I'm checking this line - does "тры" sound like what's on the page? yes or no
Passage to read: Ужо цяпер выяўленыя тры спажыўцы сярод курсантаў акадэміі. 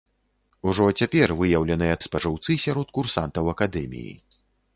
no